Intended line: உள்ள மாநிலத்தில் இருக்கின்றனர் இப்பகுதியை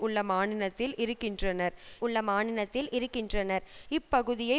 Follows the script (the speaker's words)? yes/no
no